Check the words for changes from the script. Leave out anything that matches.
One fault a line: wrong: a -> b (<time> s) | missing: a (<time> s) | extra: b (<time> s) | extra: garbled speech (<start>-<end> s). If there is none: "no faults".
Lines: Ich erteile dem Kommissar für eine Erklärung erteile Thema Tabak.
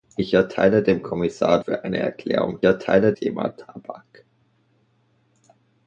no faults